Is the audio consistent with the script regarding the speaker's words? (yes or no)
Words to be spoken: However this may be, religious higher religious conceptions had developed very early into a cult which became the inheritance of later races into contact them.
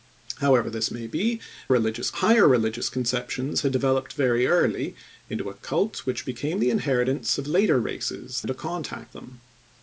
yes